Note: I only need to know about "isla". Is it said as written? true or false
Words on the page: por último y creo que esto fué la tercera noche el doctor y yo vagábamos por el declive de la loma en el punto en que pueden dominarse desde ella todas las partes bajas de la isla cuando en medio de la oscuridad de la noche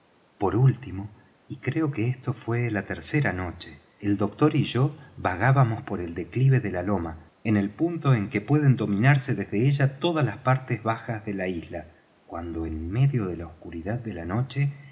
true